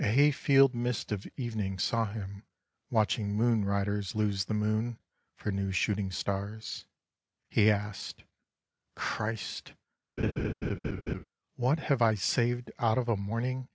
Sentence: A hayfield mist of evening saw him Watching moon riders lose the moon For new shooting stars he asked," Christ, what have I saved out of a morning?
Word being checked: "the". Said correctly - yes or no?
yes